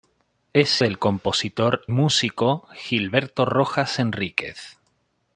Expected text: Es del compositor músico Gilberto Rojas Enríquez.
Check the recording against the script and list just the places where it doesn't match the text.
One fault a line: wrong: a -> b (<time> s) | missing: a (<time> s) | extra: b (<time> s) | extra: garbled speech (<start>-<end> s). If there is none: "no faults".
no faults